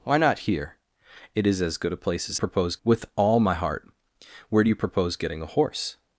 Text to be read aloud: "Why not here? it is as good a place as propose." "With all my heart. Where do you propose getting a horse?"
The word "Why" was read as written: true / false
true